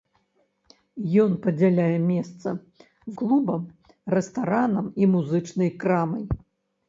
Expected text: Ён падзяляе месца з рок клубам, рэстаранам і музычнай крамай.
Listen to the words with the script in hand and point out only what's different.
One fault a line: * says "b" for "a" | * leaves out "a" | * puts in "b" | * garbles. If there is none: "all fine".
* leaves out "з рок"